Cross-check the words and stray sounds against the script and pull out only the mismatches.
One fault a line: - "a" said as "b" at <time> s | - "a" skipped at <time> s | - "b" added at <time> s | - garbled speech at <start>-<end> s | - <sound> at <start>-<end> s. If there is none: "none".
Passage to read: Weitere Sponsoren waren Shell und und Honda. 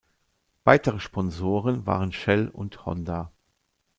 - "und" skipped at 2.9 s